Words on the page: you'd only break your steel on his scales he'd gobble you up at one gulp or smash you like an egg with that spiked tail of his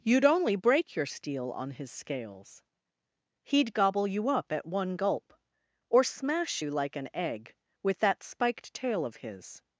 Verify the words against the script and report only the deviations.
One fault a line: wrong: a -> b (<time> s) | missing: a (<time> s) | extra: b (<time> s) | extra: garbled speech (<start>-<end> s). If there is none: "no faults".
no faults